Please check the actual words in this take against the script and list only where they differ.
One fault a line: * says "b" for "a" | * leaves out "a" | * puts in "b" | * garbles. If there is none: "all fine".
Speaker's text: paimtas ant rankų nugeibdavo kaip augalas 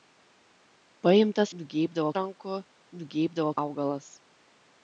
* says "nugeibdavo" for "ant"
* leaves out "kaip"